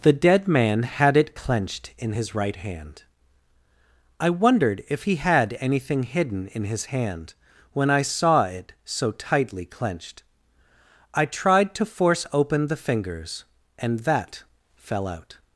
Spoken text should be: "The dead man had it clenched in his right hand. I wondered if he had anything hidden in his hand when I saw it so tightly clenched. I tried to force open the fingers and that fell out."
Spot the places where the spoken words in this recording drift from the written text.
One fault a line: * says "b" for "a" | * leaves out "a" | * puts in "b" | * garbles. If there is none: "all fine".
all fine